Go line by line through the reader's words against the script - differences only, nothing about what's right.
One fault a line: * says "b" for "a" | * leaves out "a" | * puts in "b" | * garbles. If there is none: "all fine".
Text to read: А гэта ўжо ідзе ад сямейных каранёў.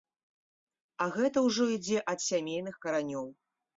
all fine